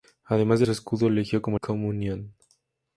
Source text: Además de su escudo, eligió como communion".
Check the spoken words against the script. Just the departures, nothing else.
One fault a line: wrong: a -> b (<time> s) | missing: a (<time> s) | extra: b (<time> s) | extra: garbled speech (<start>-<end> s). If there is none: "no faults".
no faults